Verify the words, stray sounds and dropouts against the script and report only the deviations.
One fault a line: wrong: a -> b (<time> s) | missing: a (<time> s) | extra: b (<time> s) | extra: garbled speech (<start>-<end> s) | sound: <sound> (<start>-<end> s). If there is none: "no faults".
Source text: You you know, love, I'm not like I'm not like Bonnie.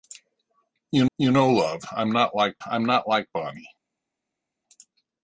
no faults